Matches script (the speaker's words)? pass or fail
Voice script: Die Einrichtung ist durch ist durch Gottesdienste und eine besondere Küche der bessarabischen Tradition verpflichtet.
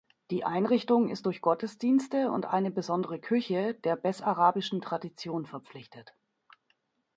fail